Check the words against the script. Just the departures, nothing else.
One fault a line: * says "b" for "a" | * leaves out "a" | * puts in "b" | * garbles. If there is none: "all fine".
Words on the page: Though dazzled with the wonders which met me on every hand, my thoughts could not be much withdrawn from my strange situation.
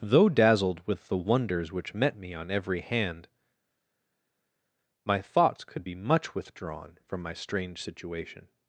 * leaves out "not"